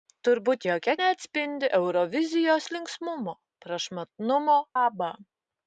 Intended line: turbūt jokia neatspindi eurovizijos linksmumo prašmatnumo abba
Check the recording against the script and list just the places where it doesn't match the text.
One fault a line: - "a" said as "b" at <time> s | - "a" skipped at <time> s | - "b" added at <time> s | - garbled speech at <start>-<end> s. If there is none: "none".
none